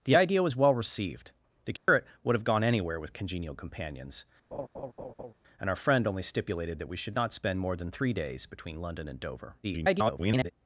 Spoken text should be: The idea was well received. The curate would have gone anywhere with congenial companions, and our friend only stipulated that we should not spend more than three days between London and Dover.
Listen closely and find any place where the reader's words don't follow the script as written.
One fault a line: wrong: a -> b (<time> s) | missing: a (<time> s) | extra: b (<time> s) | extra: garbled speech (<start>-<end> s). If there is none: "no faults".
extra: garbled speech (9.6-10.5 s)